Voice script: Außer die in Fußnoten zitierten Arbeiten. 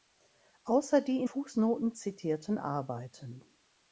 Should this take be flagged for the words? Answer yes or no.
no